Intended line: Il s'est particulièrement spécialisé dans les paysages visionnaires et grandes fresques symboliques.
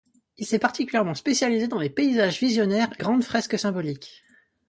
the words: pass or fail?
pass